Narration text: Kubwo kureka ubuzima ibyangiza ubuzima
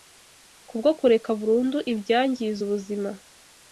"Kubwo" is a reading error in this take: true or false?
false